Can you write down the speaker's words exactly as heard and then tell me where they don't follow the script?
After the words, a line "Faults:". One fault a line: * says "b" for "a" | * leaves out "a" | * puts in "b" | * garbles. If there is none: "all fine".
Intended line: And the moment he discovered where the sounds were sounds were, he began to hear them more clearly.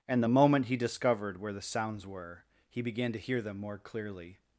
And the moment he discovered where the sounds were, he began to hear them more clearly.
Faults:
* leaves out "sounds were"